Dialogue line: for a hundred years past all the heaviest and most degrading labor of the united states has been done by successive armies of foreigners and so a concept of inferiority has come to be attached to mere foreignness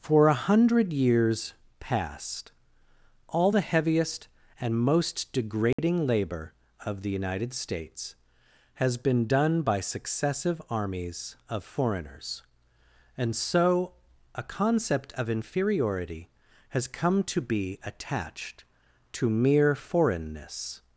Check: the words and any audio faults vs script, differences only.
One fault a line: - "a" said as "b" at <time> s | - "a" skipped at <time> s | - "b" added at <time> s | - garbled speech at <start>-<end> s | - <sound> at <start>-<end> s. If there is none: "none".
- dropout at 5.7-5.8 s